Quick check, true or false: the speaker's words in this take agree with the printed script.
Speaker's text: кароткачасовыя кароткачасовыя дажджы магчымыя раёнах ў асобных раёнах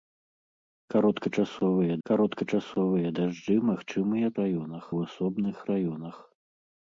true